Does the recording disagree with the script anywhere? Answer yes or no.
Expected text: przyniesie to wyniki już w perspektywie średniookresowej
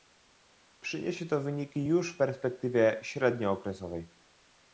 no